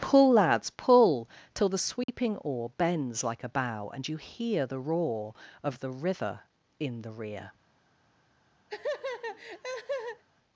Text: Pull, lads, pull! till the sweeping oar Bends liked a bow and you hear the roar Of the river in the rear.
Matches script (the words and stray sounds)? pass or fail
fail